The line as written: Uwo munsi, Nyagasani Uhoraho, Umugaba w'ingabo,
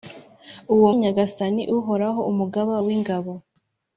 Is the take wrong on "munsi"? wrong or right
wrong